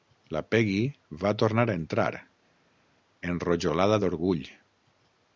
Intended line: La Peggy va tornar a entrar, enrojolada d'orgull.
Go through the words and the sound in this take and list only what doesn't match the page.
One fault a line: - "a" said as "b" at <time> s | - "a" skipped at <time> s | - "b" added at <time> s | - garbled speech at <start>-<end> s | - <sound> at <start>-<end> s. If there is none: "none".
none